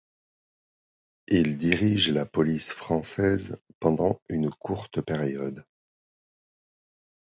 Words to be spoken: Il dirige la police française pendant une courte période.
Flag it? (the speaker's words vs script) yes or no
no